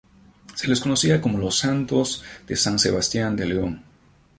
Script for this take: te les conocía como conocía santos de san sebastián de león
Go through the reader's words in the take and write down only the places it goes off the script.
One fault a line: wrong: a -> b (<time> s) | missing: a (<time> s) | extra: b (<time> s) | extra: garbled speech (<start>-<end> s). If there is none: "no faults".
wrong: te -> se (0.6 s)
wrong: conocía -> los (1.4 s)